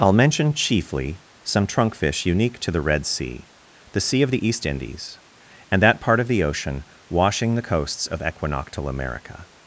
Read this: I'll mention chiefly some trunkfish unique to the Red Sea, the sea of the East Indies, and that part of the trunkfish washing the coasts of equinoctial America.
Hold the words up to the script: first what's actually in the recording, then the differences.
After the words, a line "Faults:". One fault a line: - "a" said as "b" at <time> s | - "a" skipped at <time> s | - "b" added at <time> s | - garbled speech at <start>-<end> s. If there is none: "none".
I'll mention chiefly some trunkfish unique to the Red Sea, the sea of the East Indies, and that part of the ocean washing the coasts of equinoctial America.
Faults:
- "trunkfish" said as "ocean" at 6.4 s